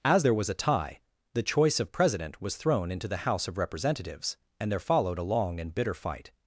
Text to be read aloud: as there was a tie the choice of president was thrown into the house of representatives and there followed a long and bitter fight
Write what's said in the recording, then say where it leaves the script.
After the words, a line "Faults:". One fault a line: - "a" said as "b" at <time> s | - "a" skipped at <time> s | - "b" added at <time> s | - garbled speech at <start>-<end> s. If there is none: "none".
as there was a tie the choice of president was thrown into the house of representatives and there followed a long and bitter fight
Faults:
none